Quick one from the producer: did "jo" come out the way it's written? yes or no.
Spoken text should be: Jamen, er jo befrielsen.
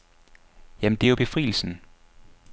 yes